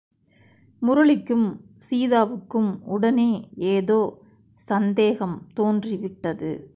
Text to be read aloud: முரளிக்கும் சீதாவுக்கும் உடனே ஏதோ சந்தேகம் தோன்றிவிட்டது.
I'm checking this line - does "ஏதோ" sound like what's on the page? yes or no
yes